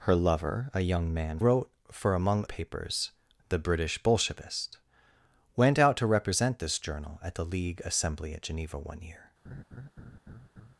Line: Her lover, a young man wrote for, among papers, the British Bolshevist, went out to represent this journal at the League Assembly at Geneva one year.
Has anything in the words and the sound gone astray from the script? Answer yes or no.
yes